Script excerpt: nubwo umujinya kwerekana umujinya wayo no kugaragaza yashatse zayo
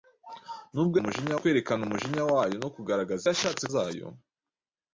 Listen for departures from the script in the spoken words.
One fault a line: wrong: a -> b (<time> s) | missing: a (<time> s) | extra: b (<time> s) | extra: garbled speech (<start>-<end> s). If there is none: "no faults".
no faults